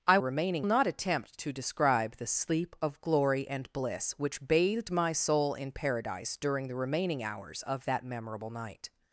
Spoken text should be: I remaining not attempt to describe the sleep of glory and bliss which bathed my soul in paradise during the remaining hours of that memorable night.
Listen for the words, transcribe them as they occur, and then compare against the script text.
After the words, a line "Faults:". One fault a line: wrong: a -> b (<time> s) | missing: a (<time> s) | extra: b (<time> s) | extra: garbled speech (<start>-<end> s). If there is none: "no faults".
I remaining not attempt to describe the sleep of glory and bliss which bathed my soul in paradise during the remaining hours of that memorable night.
Faults:
no faults